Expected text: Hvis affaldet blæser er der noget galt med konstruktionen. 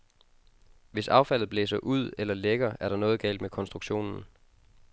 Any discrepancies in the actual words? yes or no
yes